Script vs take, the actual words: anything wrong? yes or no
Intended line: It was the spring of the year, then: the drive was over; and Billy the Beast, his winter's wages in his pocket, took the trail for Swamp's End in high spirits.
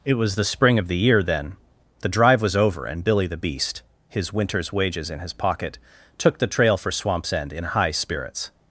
no